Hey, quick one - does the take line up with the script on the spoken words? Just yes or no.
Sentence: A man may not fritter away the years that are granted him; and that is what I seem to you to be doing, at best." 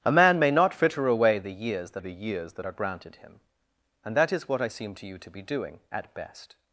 no